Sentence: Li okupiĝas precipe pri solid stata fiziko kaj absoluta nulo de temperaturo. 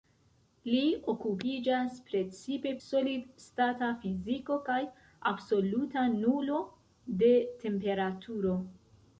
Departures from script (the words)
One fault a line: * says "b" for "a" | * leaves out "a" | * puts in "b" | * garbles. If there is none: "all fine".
* leaves out "pri"